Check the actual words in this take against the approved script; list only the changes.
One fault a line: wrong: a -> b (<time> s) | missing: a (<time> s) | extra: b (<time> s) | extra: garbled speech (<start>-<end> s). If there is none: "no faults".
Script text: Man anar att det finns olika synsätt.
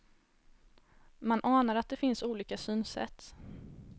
no faults